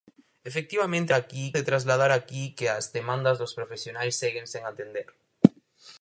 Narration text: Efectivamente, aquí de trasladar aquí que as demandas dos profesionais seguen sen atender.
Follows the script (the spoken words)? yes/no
yes